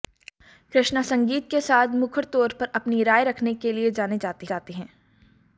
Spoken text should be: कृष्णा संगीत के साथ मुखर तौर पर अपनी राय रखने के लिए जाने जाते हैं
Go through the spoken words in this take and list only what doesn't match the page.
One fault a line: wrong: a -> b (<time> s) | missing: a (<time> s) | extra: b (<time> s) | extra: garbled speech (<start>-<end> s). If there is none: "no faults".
extra: जाते (4.4 s)